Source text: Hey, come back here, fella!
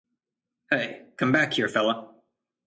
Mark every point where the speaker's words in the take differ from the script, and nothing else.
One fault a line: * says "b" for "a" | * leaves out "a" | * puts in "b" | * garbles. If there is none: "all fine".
all fine